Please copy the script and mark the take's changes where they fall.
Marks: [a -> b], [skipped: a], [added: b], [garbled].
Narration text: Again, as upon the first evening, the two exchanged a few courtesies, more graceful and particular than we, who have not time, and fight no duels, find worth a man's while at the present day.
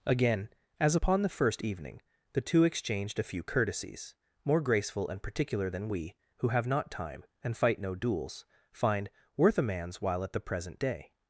Again, as upon the first evening, the two exchanged a few courtesies, more graceful and particular than we, who have not time, and fight no duels, find worth a man's while at the present day.